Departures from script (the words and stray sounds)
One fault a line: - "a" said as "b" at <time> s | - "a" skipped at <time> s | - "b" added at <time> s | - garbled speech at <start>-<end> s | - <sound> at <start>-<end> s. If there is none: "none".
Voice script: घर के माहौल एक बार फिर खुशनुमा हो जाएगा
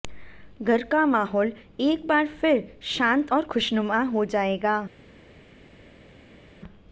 - "के" said as "का" at 0.8 s
- "शांत और" added at 2.9 s